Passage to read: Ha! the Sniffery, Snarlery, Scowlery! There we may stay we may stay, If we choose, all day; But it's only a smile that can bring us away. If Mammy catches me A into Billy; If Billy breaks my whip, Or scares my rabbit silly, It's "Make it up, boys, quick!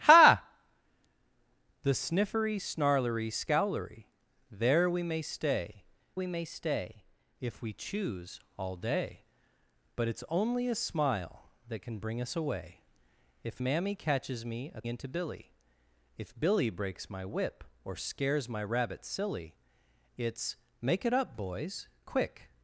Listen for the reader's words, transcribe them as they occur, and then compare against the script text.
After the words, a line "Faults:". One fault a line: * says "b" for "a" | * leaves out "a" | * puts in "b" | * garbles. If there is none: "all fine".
Ha! the Sniffery, Snarlery, Scowlery! There we may stay we may stay, If we choose, all day; But it's only a smile that can bring us away. If Mammy catches me A into Billy; If Billy breaks my whip, Or scares my rabbit silly, It's "Make it up, boys, quick!
Faults:
all fine